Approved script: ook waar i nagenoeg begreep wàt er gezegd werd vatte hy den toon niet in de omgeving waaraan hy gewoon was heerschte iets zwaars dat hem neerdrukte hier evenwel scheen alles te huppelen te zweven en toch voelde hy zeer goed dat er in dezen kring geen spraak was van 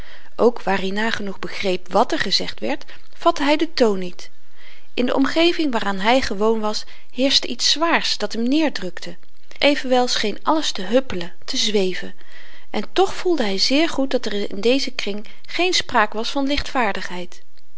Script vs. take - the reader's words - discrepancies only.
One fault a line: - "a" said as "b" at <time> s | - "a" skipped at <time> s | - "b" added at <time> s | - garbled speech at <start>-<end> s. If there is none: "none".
- "hier" skipped at 9.2 s